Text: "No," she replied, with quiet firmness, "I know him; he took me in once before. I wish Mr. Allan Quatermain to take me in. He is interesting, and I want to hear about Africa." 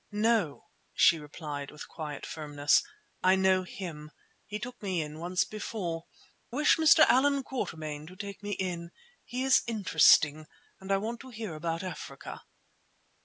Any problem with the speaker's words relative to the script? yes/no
yes